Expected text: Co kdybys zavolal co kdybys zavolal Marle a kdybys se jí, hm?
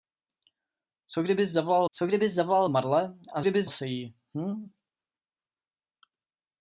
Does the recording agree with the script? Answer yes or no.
yes